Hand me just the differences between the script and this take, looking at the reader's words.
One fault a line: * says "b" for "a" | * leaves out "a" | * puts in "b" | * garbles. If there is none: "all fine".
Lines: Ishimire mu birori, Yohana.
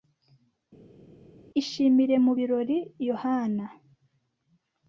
all fine